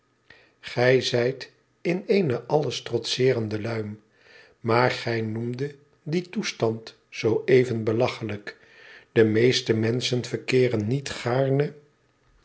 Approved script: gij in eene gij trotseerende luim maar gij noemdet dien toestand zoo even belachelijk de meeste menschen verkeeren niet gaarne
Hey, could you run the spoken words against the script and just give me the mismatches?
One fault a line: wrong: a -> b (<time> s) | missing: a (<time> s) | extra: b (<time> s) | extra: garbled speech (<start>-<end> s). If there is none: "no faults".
extra: zijt (1.0 s)
wrong: gij -> alles (2.5 s)